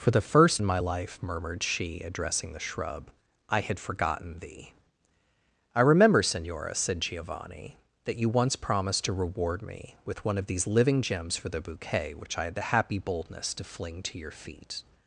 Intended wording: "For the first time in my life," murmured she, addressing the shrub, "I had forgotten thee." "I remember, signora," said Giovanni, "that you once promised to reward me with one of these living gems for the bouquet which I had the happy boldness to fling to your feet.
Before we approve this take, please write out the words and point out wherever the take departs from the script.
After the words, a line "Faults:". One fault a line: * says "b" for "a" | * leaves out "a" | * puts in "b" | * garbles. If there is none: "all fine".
"For the first in my life," murmured she, addressing the shrub, "I had forgotten thee." "I remember, signora," said Giovanni, "that you once promised to reward me with one of these living gems for the bouquet which I had the happy boldness to fling to your feet.
Faults:
* leaves out "time"